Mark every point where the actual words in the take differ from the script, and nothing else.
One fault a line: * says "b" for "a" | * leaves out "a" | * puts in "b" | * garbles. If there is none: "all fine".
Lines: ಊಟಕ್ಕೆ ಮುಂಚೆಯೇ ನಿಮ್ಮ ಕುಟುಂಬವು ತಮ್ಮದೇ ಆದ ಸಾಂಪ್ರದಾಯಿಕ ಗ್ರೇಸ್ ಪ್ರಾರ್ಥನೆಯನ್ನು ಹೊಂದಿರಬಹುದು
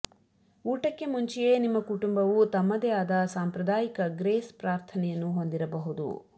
all fine